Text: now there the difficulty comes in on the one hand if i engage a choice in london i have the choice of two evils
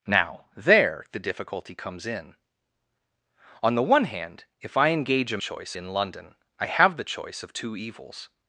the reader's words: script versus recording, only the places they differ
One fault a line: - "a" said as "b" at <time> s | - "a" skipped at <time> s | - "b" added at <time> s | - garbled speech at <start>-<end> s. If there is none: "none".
none